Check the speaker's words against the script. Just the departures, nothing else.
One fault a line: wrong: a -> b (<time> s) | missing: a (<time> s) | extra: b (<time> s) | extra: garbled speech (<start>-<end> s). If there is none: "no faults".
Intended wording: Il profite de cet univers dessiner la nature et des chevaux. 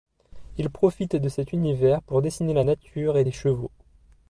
extra: pour (2.0 s)